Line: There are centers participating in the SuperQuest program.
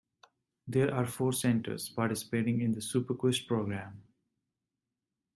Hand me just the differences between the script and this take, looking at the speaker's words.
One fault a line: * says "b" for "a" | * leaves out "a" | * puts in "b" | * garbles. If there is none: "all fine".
* puts in "four"